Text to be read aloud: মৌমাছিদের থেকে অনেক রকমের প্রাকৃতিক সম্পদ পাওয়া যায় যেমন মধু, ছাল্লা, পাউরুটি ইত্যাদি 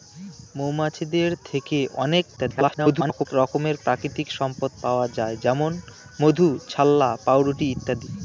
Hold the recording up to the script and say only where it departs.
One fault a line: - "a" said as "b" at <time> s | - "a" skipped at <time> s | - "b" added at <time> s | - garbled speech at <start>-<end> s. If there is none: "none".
- garbled speech at 2.4-3.3 s